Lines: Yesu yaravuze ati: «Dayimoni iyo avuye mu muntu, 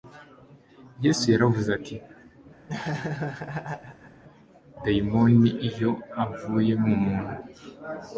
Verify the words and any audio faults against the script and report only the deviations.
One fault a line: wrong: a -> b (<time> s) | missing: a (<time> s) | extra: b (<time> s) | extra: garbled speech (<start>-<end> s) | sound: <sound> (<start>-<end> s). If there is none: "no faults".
sound: laugh (2.7-4.2 s)